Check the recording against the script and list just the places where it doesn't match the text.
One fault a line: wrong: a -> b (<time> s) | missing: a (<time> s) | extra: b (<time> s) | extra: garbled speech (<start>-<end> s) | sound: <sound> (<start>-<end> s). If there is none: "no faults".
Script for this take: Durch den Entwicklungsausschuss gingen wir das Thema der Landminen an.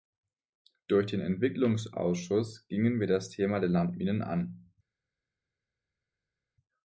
no faults